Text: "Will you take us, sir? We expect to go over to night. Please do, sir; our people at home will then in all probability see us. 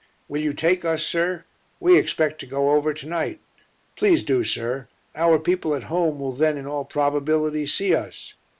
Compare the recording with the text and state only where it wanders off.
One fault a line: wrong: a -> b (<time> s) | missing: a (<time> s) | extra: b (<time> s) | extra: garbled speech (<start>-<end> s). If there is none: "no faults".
no faults